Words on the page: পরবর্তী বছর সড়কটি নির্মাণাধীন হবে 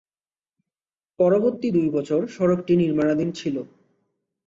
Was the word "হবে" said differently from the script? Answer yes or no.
yes